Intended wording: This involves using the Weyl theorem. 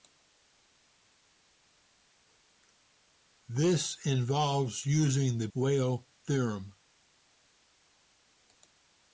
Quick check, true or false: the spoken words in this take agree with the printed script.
true